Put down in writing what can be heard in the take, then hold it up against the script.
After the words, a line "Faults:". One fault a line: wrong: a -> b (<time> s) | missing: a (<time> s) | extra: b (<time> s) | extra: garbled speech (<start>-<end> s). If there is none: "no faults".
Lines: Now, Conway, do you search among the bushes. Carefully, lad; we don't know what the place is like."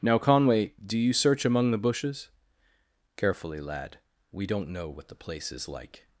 Now, Conway, do you search among the bushes. Carefully, lad; we don't know what the place is like."
Faults:
no faults